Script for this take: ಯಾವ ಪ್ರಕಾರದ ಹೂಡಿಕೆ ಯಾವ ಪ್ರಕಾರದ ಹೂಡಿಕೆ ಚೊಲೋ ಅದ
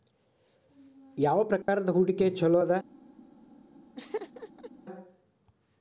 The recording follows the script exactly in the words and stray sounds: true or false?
false